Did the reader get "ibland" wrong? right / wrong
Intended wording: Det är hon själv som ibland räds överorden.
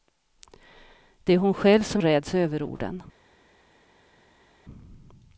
wrong